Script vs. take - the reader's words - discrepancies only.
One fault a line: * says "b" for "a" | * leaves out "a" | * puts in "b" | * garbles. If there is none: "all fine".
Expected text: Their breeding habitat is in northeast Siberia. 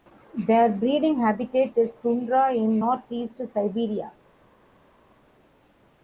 * puts in "tundra"